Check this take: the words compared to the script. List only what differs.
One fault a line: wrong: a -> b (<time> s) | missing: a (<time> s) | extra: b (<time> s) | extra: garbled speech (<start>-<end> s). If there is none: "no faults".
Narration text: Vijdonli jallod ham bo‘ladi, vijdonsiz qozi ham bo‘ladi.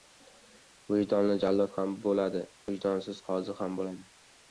no faults